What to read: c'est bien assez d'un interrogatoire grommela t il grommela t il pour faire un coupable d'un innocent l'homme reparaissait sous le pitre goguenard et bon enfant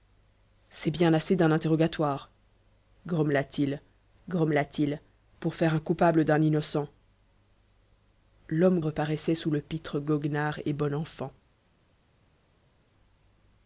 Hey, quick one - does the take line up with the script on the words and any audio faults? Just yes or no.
yes